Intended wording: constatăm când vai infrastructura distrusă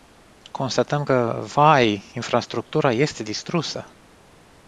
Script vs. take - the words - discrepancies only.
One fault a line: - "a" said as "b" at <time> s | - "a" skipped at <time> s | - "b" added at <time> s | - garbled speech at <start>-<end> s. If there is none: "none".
- "când" said as "că" at 1.0 s
- "este" added at 2.9 s